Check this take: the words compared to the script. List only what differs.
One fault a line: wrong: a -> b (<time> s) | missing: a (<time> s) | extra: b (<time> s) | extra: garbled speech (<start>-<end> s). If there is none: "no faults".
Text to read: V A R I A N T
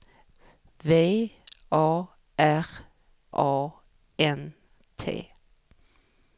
missing: I (2.6 s)